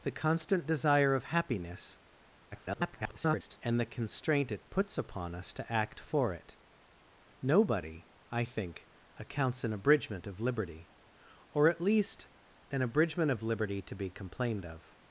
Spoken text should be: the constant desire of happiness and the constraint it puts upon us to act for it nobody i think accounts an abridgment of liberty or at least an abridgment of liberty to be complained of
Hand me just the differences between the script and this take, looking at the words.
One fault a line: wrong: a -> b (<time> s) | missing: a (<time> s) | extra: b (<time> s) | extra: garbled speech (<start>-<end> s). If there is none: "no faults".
extra: garbled speech (2.5-3.6 s)